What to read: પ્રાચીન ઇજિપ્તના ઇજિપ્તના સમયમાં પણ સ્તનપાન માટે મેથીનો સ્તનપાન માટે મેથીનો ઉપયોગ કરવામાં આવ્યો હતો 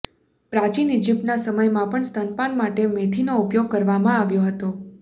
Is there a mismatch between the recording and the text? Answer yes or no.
yes